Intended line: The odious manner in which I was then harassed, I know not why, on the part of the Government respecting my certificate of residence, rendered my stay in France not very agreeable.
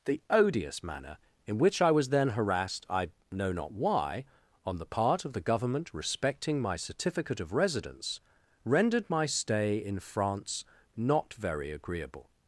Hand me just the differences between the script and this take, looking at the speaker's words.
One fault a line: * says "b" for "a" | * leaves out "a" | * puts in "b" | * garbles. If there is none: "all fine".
all fine